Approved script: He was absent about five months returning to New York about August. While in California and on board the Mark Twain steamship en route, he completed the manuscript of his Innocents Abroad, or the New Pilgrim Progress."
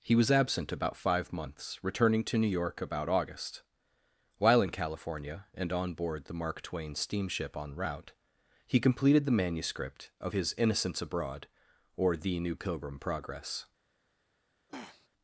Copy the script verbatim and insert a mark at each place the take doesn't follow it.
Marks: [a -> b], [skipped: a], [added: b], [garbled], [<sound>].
He was absent about five months returning to New York about August. While in California and on board the Mark Twain steamship en route, he completed the manuscript of his Innocents Abroad, or the New Pilgrim Progress." [throat clearing]